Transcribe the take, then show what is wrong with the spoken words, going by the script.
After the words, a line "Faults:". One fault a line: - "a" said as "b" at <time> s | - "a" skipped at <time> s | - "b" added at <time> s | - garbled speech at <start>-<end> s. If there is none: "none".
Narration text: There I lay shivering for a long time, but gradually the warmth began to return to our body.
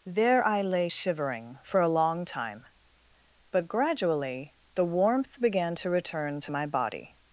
There I lay shivering for a long time, but gradually the warmth began to return to my body.
Faults:
- "our" said as "my" at 6.5 s